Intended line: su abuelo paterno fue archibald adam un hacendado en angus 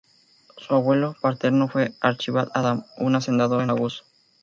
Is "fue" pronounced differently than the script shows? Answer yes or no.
no